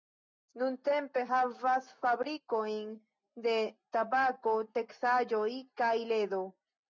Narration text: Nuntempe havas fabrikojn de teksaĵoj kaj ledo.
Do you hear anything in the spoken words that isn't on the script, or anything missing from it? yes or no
yes